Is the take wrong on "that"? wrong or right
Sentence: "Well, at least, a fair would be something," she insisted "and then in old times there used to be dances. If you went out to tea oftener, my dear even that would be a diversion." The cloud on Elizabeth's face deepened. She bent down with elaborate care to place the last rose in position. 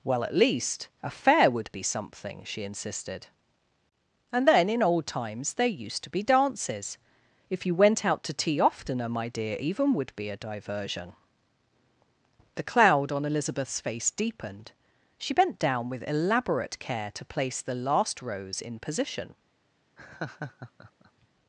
wrong